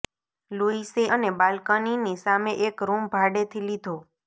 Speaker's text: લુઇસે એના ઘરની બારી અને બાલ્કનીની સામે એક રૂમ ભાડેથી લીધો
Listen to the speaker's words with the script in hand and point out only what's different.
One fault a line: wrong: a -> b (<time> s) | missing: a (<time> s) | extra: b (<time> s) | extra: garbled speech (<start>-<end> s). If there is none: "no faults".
missing: એના ઘરની બારી (1.0 s)